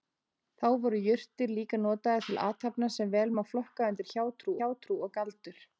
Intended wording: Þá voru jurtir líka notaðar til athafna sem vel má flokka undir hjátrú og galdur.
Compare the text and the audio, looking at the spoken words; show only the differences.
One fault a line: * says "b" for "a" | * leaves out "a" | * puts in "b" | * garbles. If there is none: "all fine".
* puts in "hjátrú"